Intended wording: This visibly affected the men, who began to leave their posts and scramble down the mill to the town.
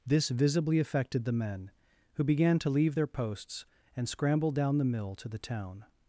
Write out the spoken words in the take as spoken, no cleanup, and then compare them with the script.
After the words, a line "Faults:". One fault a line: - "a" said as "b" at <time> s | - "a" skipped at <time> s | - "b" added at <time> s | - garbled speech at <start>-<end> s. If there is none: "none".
This visibly affected the men, who began to leave their posts and scramble down the mill to the town.
Faults:
none